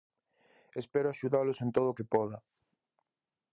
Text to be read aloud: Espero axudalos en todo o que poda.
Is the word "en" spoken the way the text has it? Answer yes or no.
yes